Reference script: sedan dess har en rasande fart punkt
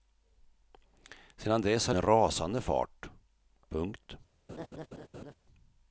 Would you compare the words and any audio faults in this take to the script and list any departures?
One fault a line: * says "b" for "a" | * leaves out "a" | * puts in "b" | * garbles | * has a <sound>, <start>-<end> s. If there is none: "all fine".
* has a laugh, 4.5-5.3 s